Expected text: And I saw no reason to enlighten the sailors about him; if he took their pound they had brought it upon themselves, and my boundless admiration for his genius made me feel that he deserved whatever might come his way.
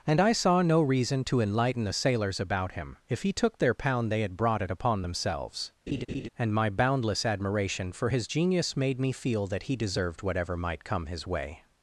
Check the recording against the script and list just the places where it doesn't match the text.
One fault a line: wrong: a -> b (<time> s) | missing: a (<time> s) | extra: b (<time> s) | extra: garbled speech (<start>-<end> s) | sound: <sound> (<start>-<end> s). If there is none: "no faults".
sound: laugh (5.9-6.3 s)